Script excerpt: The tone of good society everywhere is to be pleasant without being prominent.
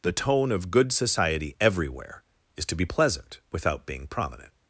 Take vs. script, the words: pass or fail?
pass